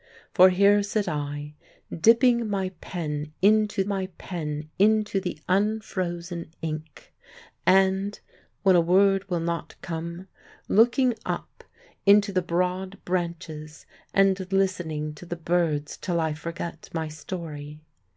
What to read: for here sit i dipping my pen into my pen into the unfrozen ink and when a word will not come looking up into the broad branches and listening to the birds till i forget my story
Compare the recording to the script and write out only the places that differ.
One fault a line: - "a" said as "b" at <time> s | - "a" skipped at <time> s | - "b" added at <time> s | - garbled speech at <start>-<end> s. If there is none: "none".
none